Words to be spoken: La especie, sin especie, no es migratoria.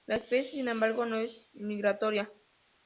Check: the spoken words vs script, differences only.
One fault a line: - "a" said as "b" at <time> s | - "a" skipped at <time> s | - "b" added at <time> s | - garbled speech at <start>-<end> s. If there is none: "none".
- "especie" said as "embargo" at 0.7 s